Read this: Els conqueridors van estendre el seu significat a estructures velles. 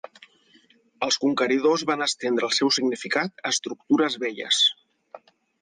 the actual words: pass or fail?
pass